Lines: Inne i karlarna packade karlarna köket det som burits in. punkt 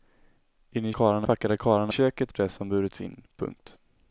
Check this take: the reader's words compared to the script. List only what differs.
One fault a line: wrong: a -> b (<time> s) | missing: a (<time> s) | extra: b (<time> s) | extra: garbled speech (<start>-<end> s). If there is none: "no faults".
no faults